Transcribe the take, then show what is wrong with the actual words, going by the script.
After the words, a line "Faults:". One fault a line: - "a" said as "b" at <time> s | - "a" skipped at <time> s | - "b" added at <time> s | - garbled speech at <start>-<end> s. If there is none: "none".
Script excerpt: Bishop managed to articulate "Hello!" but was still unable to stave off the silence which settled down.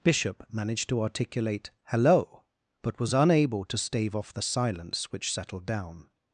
Bishop managed to articulate "Hello!" but was unable to stave off the silence which settled down.
Faults:
- "still" skipped at 3.1 s